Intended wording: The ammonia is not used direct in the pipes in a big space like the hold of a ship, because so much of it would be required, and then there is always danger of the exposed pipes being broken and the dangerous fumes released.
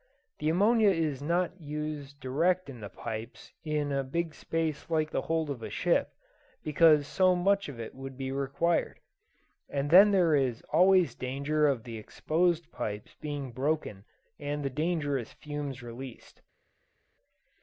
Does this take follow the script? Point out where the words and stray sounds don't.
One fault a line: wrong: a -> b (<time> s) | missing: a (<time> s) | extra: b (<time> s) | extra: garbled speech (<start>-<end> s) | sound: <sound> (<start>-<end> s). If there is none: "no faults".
no faults